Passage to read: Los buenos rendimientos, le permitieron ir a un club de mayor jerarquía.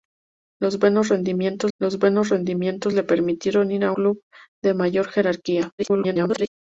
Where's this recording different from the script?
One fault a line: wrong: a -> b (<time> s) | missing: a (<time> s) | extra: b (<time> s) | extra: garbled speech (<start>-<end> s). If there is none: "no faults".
extra: los buenos rendimientos (1.8 s)
missing: un (3.9 s)
extra: garbled speech (5.8-6.5 s)